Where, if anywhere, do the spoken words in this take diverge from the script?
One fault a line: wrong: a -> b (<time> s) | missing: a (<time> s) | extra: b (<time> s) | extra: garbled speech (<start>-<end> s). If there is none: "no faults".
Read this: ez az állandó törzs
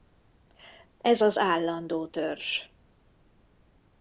no faults